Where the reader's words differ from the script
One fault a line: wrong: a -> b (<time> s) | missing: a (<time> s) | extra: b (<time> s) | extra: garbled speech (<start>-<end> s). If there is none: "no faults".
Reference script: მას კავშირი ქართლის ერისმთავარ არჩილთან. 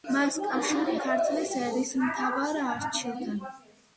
no faults